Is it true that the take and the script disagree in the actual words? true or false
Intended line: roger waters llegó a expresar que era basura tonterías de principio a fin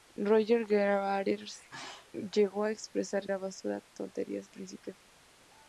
true